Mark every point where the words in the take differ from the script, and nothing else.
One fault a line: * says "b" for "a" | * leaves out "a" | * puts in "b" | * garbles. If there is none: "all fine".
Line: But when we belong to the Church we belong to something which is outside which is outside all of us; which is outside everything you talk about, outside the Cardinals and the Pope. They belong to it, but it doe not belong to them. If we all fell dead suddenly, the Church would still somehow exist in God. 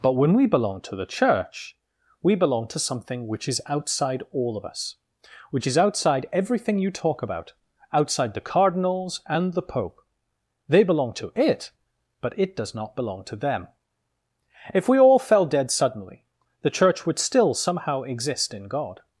* leaves out "which is outside"
* says "does" for "doe"